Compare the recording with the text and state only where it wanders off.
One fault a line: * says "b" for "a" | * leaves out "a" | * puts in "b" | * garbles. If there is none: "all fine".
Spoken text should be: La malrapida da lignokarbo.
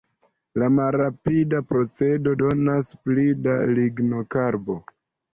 * puts in "procedo donas pli"